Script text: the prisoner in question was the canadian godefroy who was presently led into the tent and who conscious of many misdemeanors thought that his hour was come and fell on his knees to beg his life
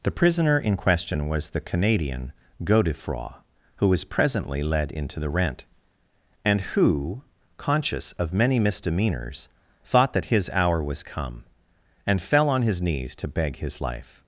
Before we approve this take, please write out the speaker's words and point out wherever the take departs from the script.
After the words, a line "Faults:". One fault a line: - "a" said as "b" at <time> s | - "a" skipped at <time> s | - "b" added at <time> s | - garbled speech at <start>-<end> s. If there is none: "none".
the prisoner in question was the canadian godefroy who was presently led into the rent and who conscious of many misdemeanors thought that his hour was come and fell on his knees to beg his life
Faults:
- "tent" said as "rent" at 5.3 s